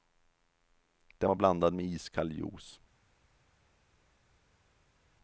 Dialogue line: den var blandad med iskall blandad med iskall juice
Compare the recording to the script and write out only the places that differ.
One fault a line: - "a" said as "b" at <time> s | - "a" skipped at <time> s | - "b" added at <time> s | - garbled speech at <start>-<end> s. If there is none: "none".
- "blandad med iskall" skipped at 2.3 s